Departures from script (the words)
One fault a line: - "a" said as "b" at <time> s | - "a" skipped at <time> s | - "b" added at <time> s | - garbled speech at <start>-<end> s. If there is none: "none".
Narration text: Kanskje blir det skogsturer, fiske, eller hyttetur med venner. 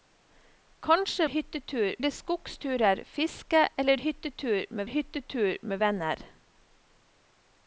- "blir" said as "hyttetur" at 1.2 s
- "hyttetur med" added at 4.8 s